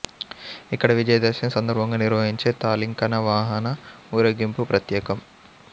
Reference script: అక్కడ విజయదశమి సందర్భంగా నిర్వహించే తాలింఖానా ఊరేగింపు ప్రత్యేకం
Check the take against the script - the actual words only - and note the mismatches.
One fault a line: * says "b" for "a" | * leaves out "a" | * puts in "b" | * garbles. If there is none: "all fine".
* says "ఇక్కడ" for "అక్కడ"
* puts in "వాహన"